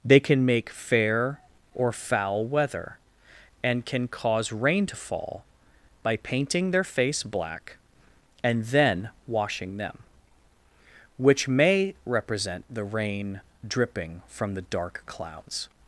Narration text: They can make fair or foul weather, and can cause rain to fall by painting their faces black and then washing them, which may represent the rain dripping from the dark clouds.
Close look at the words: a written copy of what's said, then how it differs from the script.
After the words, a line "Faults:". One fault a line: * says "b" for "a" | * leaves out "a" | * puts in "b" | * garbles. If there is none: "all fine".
They can make fair or foul weather, and can cause rain to fall by painting their face black and then washing them, which may represent the rain dripping from the dark clouds.
Faults:
* says "face" for "faces"